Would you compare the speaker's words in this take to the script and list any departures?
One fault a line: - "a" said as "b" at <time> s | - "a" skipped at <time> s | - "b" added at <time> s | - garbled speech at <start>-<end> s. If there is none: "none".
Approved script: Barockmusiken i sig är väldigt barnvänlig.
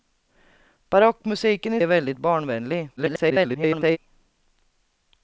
- "sig" skipped at 1.8 s
- garbled speech at 3.0-4.0 s